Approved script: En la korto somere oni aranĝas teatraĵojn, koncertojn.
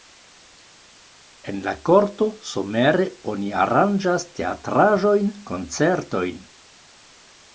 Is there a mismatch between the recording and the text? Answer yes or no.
no